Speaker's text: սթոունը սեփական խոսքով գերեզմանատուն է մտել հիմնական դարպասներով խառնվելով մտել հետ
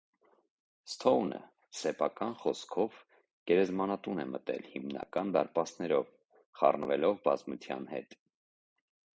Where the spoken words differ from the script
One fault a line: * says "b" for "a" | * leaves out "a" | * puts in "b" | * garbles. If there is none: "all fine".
* says "բազմության" for "մտել"